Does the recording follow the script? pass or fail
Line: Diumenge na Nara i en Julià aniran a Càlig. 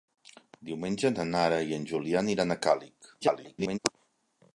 fail